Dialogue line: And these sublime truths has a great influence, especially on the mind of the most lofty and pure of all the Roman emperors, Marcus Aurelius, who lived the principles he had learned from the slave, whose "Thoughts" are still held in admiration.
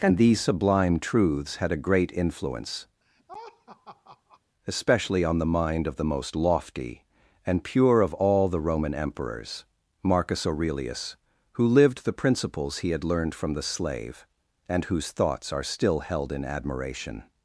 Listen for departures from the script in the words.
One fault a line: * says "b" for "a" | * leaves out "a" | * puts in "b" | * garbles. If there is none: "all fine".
* says "had" for "has"
* puts in "and"